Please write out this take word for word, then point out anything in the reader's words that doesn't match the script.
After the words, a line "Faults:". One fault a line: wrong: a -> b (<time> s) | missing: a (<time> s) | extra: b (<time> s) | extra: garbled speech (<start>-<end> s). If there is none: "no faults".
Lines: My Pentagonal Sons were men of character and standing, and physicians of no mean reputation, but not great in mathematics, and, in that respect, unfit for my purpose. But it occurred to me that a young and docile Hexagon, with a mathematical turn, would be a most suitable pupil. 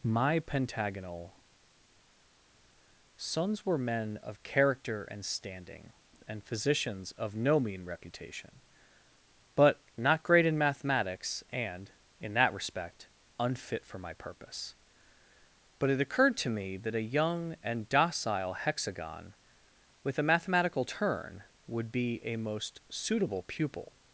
My Pentagonal Sons were men of character and standing, and physicians of no mean reputation, but not great in mathematics, and, in that respect, unfit for my purpose. But it occurred to me that a young and docile Hexagon, with a mathematical turn, would be a most suitable pupil.
Faults:
no faults